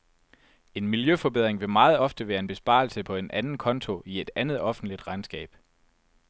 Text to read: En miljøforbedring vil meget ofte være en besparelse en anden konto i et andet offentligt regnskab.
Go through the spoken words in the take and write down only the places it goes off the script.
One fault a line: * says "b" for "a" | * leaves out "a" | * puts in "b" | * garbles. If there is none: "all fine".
* puts in "på"